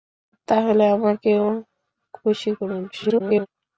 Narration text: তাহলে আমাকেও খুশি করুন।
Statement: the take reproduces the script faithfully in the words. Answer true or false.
false